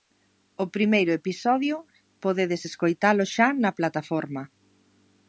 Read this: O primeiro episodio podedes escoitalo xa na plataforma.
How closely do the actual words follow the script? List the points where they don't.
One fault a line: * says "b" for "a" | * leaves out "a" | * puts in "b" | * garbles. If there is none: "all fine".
all fine